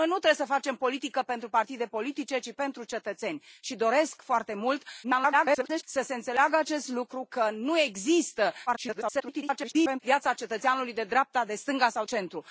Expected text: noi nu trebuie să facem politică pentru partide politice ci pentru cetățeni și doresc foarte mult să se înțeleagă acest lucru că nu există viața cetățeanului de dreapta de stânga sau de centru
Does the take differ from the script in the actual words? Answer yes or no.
yes